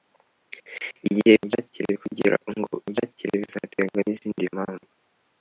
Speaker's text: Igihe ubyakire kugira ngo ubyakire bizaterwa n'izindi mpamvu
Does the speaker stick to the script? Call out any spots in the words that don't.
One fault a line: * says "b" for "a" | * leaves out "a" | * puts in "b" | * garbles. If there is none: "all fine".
all fine